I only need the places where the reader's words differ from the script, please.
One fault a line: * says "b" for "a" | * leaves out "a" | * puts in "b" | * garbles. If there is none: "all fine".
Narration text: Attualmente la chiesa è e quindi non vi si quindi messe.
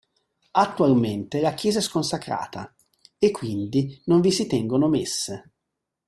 * puts in "sconsacrata"
* says "tengono" for "quindi"